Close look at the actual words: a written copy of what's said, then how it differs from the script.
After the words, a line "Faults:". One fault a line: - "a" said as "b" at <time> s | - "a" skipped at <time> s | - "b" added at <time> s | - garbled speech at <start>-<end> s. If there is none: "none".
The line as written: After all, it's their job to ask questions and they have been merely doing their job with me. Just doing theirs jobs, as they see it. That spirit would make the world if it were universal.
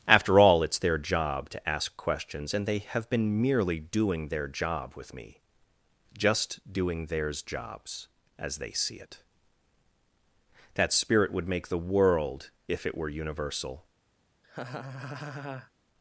After all, it's their job to ask questions and they have been merely doing their job with me. Just doing theirs jobs, as they see it. That spirit would make the world if it were universal.
Faults:
none